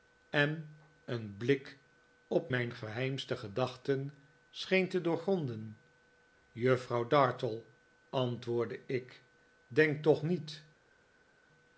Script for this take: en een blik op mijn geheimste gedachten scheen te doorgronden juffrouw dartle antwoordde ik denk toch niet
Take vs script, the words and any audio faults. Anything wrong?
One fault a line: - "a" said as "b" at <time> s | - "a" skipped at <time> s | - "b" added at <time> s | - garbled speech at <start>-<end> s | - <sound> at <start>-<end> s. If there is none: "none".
none